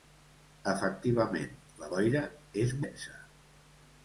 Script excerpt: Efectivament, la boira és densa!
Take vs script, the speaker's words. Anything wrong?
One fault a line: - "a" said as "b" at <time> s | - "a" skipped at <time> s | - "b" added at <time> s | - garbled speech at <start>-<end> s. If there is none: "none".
none